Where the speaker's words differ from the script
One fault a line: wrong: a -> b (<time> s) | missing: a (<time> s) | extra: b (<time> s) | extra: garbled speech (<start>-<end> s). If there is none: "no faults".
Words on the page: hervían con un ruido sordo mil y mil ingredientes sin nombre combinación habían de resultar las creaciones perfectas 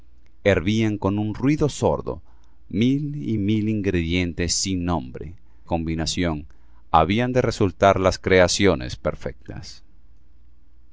no faults